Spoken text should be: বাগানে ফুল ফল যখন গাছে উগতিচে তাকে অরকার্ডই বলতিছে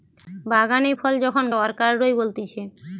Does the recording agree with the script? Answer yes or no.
no